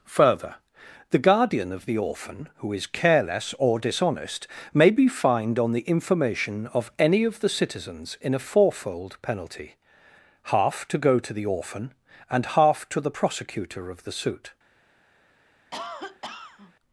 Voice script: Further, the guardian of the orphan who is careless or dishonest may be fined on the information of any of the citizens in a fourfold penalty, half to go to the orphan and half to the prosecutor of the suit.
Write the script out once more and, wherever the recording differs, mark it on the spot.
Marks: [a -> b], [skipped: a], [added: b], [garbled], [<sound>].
Further, the guardian of the orphan who is careless or dishonest may be fined on the information of any of the citizens in a fourfold penalty, half to go to the orphan and half to the prosecutor of the suit. [cough]